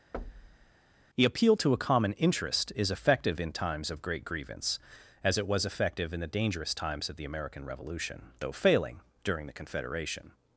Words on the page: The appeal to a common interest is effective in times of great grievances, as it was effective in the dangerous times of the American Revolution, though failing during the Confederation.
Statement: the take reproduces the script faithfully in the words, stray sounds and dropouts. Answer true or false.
false